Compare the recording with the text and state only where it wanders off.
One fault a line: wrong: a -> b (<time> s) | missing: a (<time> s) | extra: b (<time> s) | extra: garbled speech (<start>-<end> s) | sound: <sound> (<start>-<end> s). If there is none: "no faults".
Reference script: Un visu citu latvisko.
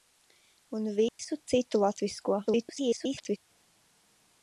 sound: dropout (1.1-1.2 s)
extra: garbled speech (2.5-3.4 s)